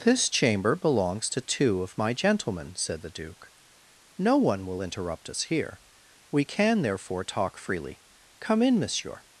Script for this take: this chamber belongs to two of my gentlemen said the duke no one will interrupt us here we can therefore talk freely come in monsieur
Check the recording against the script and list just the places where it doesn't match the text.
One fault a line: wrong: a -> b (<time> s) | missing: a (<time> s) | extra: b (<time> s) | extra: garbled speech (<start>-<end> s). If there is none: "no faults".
no faults